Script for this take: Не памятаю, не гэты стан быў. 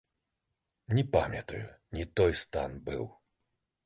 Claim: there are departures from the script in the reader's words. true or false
true